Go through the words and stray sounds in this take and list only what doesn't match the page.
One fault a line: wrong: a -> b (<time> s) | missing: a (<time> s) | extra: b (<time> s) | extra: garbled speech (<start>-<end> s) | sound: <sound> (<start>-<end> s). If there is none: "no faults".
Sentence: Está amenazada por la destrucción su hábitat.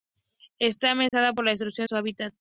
sound: dropout (1.1-1.1 s)